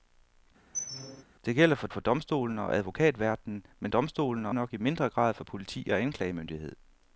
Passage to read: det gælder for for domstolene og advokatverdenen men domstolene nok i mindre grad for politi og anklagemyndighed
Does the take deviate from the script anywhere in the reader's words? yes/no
no